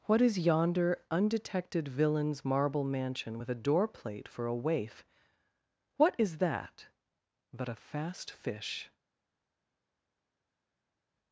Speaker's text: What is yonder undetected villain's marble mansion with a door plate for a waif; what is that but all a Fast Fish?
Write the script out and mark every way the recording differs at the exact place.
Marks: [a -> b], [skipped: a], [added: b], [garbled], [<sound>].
What is yonder undetected villain's marble mansion with a door plate for a waif; what is that but [skipped: all] a Fast Fish?